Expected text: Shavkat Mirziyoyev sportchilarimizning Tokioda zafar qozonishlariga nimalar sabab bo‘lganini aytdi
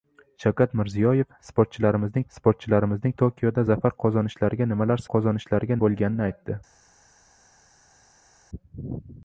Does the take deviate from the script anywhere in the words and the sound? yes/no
yes